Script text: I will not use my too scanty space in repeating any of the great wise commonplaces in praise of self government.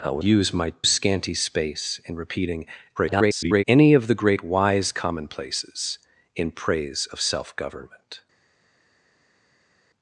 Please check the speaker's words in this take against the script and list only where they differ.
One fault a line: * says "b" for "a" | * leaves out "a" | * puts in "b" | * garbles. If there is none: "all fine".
* leaves out "not"
* leaves out "too"
* garbles